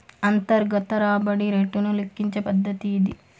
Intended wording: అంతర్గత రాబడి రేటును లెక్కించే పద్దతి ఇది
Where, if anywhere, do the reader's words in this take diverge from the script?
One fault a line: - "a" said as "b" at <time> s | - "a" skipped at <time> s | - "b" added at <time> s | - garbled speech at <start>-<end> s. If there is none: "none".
none